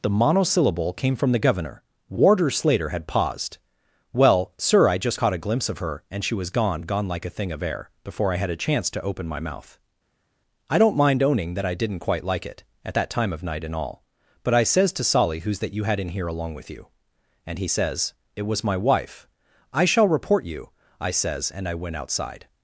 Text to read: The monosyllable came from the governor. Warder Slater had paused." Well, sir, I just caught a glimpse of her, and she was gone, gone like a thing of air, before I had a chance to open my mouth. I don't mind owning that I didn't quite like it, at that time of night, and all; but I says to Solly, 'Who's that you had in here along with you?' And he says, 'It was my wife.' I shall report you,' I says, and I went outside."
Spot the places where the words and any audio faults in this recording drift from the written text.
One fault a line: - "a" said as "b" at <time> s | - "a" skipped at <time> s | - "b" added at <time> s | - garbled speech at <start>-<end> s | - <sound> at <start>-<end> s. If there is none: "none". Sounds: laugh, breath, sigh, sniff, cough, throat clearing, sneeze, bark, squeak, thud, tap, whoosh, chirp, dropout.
none